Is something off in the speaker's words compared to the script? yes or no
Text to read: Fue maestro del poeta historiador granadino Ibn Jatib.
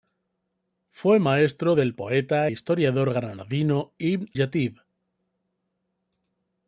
no